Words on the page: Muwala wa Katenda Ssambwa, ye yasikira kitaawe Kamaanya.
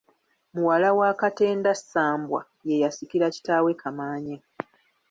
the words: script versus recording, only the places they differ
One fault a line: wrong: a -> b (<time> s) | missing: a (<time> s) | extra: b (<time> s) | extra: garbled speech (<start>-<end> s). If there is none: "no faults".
no faults